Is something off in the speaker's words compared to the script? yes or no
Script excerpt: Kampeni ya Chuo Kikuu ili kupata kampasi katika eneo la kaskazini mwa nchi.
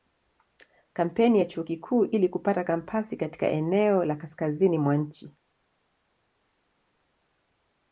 no